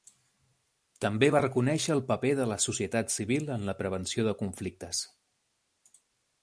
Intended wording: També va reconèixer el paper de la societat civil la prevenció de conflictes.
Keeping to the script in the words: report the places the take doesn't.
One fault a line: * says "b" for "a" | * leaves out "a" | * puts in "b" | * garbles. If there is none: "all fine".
* puts in "en"